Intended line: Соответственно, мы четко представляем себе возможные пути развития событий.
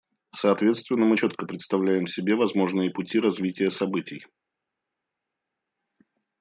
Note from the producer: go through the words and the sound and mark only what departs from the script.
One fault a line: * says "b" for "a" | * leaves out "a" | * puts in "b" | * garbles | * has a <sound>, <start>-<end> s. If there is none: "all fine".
all fine